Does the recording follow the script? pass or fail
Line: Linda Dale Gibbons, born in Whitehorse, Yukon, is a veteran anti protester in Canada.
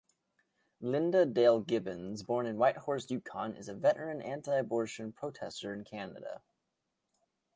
fail